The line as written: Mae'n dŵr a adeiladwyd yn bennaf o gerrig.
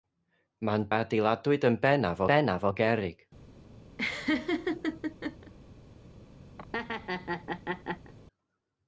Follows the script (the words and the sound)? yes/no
no